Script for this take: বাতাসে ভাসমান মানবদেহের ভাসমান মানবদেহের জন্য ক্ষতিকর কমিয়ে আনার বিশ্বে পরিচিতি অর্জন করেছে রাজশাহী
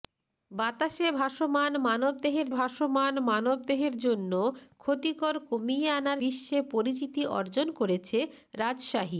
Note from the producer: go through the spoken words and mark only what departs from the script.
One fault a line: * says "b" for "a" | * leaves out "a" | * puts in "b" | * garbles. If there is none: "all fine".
all fine